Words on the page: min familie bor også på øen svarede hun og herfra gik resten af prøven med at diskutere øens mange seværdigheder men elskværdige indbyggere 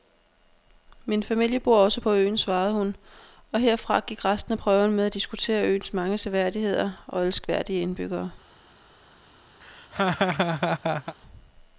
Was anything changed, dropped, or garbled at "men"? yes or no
yes